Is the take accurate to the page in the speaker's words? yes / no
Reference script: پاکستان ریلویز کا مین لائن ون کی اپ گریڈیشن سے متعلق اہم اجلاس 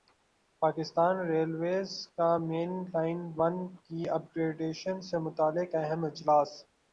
yes